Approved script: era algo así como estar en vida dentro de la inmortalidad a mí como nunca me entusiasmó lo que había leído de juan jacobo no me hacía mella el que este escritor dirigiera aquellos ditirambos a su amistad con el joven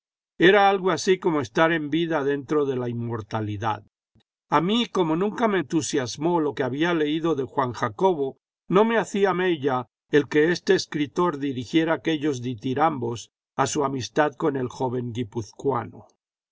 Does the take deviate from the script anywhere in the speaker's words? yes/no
no